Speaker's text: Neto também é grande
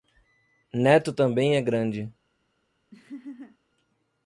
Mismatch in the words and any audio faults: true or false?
true